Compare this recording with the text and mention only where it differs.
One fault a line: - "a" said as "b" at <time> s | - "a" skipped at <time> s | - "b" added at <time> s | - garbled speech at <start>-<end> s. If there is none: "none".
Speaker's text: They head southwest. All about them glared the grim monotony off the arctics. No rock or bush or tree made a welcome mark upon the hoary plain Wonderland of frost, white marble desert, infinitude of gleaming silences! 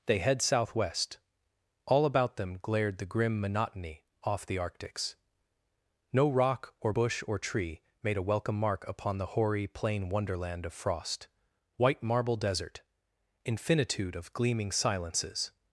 none